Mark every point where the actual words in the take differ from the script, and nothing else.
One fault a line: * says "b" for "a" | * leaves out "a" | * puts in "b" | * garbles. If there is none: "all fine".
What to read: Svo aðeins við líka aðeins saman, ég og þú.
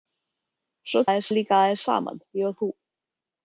all fine